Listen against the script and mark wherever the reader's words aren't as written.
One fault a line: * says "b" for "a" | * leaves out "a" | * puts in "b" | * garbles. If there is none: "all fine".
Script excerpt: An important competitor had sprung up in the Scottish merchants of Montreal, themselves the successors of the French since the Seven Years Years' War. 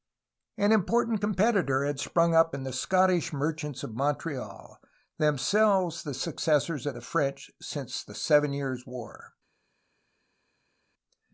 * leaves out "Years"